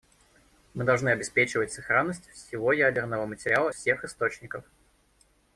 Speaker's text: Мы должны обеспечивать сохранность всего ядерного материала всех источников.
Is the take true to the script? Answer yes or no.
yes